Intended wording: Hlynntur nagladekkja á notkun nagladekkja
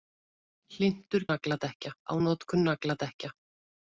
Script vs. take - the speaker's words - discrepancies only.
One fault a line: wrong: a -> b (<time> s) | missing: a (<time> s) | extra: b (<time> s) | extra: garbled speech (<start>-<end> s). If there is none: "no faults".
no faults